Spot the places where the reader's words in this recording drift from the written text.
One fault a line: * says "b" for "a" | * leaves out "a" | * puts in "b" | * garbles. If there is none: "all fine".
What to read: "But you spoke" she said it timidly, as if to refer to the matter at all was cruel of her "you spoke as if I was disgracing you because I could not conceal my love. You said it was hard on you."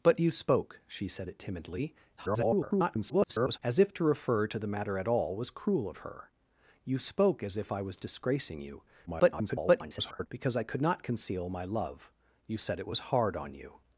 * garbles
* garbles